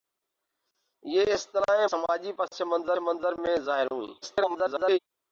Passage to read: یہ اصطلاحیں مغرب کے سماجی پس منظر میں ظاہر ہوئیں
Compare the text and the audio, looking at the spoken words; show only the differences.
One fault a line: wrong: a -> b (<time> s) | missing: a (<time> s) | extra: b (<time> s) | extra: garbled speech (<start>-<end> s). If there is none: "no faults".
missing: مغرب کے (1.9 s)
extra: منظر (3.0 s)
extra: garbled speech (4.2-5.0 s)